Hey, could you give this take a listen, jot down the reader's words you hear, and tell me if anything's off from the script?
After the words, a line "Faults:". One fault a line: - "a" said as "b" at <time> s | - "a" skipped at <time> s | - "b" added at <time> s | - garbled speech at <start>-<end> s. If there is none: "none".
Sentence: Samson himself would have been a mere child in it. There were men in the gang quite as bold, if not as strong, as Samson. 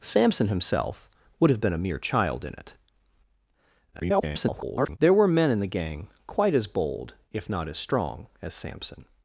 Samson himself would have been a mere child in it. [garbled] There were men in the gang quite as bold, if not as strong, as Samson.
Faults:
- garbled speech at 3.9-5.0 s